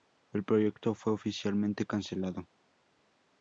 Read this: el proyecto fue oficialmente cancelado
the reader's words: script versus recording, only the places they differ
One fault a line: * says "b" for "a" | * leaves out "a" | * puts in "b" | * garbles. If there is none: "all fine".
all fine